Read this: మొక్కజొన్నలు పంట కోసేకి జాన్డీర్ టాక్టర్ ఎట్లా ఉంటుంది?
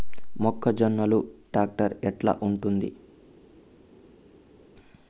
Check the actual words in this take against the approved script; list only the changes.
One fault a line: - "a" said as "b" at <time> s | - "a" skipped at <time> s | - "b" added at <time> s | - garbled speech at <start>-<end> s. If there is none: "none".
- "పంట కోసేకి జాన్డీర్" skipped at 1.2 s